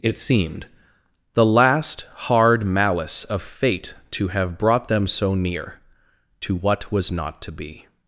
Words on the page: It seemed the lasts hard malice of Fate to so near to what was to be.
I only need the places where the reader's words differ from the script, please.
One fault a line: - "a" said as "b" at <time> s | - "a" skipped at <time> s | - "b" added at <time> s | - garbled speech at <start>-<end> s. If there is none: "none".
- "lasts" said as "last" at 1.4 s
- "have brought them" added at 4.3 s
- "not" added at 7.1 s